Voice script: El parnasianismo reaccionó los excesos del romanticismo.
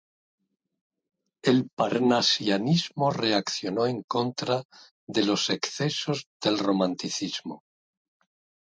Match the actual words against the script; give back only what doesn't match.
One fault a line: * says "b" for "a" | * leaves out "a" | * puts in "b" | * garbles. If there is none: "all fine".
* puts in "en contra de"